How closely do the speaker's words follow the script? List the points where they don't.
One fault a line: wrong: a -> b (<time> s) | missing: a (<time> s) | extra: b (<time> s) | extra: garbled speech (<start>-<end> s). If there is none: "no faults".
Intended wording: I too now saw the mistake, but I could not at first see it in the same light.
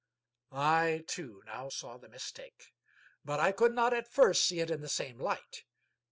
no faults